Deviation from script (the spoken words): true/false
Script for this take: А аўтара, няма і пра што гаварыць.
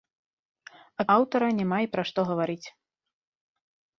false